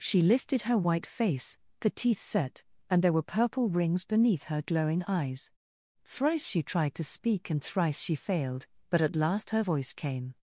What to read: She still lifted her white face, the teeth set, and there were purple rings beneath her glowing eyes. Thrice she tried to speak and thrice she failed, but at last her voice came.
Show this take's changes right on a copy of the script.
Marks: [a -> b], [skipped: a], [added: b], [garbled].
She [skipped: still] lifted her white face, the teeth set, and there were purple rings beneath her glowing eyes. Thrice she tried to speak and thrice she failed, but at last her voice came.